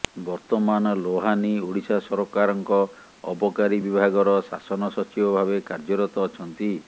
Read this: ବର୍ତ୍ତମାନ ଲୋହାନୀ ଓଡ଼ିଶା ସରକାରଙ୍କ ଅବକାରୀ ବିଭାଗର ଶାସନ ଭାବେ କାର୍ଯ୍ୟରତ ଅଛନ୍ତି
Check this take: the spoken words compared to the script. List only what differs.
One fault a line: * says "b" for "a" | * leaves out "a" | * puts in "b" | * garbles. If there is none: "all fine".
* puts in "ସଚିବ"